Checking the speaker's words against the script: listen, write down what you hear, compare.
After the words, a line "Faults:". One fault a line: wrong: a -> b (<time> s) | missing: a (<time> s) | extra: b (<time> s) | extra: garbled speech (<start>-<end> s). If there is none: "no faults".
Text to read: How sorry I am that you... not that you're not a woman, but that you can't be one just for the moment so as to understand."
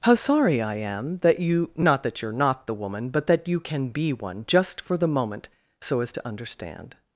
How sorry I am that you... not that you're not the woman, but that you can be one just for the moment so as to understand."
Faults:
wrong: a -> the (2.7 s)
wrong: can't -> can (3.6 s)